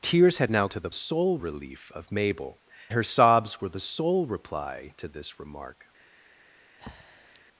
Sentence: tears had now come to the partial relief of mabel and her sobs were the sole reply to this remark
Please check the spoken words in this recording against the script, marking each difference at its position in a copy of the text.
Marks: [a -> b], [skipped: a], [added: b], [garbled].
tears had now [skipped: come] to the [partial -> sole] relief of mabel [skipped: and] her sobs were the sole reply to this remark